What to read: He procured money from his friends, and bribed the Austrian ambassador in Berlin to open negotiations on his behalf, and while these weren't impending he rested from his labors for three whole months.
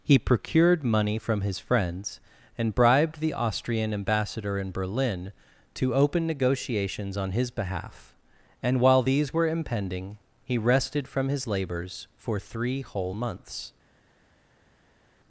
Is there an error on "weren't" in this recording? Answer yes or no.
yes